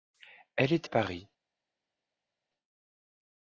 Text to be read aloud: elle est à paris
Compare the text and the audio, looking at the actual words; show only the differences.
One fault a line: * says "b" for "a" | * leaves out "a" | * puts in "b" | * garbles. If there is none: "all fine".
all fine